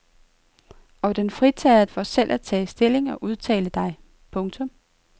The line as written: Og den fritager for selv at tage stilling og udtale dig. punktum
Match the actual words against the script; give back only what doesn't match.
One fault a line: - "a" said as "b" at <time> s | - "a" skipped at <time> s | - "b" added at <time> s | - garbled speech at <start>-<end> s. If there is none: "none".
none